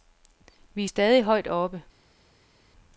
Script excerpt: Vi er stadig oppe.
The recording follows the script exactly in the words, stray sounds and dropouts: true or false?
false